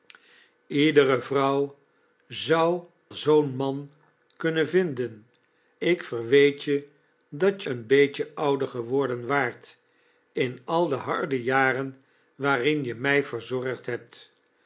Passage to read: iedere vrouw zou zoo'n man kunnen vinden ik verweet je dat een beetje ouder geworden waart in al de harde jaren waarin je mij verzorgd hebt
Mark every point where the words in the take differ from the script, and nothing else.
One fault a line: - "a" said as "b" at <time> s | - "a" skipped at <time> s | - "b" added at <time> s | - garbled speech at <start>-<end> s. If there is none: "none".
none